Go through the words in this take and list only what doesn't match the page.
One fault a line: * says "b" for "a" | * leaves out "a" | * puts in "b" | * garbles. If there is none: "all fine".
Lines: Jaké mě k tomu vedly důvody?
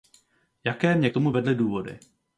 all fine